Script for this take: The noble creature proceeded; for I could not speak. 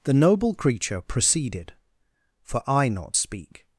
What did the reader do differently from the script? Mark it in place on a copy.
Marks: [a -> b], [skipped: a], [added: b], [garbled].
The noble creature proceeded; for I [skipped: could] not speak.